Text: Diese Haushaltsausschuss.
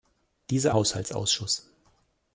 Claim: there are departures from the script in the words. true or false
false